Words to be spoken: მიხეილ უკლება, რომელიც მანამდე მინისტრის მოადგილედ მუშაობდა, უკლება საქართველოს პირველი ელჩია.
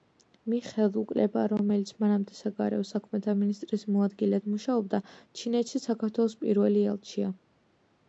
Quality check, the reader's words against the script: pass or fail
fail